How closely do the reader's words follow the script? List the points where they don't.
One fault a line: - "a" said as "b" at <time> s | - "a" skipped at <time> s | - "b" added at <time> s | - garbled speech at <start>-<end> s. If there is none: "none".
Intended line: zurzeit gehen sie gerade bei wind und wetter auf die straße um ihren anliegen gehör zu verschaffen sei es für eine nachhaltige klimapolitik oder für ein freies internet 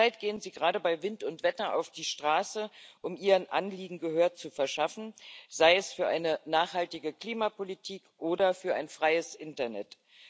none